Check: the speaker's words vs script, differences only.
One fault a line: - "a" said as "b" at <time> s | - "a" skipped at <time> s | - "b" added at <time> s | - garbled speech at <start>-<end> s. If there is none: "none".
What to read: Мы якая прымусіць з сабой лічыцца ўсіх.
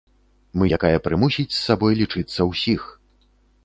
none